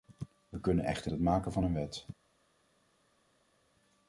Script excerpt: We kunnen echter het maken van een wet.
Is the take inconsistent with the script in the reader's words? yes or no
no